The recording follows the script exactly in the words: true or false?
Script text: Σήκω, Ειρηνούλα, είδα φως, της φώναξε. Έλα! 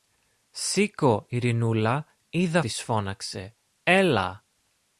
false